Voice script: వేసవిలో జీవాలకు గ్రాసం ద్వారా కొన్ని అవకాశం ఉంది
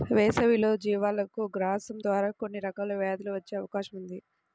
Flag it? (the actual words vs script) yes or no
yes